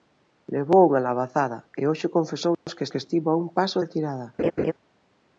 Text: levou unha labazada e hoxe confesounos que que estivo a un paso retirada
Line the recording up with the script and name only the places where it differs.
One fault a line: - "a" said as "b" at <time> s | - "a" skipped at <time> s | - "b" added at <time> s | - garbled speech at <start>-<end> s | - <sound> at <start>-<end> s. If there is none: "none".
- dropout at 2.5-2.7 s
- laugh at 4.4-4.7 s